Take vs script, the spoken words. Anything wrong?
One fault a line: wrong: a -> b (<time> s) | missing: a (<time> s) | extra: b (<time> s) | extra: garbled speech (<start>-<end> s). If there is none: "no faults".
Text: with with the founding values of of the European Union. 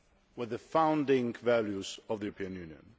missing: with (0.5 s)
missing: of (2.2 s)